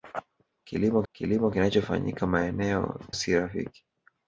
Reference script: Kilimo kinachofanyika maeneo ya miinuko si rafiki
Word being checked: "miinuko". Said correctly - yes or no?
no